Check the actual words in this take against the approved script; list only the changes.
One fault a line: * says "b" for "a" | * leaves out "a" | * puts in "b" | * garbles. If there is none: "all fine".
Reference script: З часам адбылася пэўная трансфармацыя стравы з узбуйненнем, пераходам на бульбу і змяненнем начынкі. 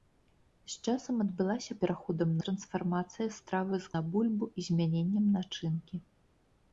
* says "пераходам" for "пэўная"
* leaves out "узбуйненнем пераходам"